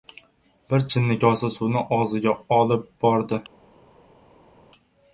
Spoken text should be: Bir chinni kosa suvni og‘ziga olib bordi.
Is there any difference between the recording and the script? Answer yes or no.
no